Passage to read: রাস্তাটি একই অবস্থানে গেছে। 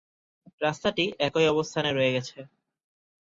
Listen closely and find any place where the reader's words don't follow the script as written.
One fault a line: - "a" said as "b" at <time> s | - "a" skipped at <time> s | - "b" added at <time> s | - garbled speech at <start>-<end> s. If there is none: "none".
- "রয়ে" added at 1.9 s